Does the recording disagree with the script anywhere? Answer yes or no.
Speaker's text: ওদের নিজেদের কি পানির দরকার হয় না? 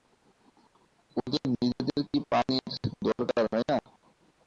no